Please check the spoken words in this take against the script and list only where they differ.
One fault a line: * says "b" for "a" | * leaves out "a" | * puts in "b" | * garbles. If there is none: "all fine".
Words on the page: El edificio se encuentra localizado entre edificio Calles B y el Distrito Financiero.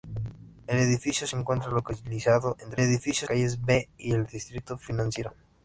all fine